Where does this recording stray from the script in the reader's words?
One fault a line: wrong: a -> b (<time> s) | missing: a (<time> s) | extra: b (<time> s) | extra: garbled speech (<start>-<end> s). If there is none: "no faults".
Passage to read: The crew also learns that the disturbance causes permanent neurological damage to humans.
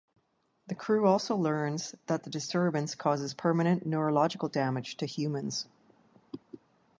no faults